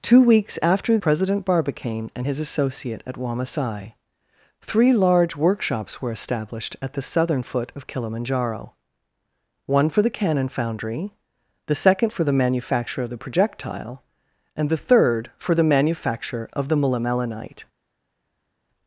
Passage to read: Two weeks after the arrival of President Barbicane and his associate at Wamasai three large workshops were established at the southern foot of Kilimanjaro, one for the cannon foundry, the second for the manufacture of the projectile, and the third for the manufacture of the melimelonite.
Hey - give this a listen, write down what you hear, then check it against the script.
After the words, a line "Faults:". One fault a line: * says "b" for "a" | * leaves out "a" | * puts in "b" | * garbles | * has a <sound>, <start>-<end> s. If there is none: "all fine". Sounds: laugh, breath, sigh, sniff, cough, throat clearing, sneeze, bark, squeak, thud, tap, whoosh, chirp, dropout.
Two weeks after President Barbicane and his associate at Wamasai three large workshops were established at the southern foot of Kilimanjaro, one for the cannon foundry, the second for the manufacture of the projectile, and the third for the manufacture of the melimelonite.
Faults:
* leaves out "the arrival of"